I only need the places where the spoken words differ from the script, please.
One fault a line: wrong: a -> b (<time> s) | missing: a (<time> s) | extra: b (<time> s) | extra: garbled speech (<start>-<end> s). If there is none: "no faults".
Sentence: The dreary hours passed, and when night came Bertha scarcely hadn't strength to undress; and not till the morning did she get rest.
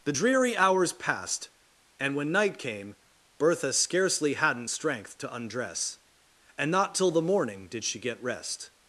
no faults